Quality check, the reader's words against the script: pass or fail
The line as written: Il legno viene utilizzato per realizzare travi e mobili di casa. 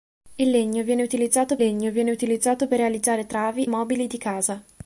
fail